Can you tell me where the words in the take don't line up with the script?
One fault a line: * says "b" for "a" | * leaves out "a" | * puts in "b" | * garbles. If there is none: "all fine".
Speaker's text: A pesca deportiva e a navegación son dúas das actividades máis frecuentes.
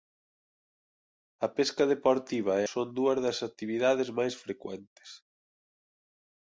* leaves out "a navegación"